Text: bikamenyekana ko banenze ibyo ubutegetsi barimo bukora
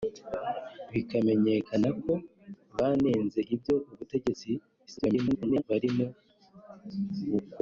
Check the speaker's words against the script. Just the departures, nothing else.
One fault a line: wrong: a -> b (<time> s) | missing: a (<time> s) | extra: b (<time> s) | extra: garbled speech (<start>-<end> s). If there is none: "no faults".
extra: garbled speech (4.9-5.6 s)